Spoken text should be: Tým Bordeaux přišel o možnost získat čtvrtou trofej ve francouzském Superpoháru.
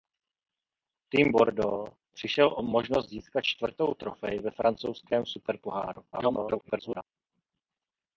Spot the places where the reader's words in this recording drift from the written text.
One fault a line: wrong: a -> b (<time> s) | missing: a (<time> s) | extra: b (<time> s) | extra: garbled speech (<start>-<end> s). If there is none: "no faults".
extra: garbled speech (6.1-7.0 s)